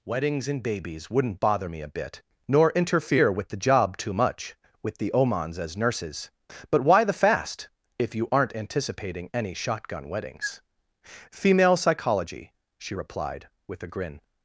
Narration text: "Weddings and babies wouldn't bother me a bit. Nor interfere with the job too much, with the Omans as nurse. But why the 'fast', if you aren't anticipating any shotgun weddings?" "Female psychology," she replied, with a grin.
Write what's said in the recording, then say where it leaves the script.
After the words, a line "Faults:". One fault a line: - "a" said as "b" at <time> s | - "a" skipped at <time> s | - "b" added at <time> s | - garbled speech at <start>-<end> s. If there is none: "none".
"Weddings and babies wouldn't bother me a bit. Nor interfere with the job too much, with the Omans as nurses. But why the 'fast', if you aren't anticipating any shotgun weddings?" "Female psychology," she replied, with a grin.
Faults:
- "nurse" said as "nurses" at 5.8 s